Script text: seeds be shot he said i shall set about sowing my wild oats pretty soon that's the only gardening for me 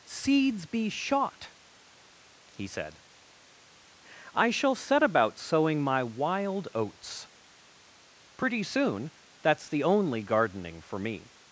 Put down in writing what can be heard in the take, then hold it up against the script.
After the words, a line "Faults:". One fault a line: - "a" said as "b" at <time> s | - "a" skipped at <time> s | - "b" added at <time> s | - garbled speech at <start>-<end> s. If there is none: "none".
seeds be shot he said i shall set about sowing my wild oats pretty soon that's the only gardening for me
Faults:
none